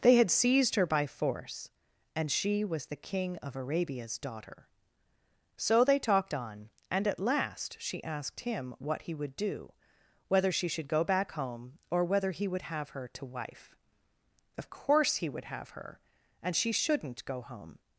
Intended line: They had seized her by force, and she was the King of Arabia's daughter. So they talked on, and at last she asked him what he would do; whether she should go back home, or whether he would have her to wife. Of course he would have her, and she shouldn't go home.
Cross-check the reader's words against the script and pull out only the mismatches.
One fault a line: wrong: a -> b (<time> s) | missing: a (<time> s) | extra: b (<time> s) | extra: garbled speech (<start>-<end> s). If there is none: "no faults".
no faults